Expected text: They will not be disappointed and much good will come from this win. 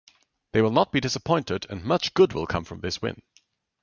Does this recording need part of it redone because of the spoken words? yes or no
no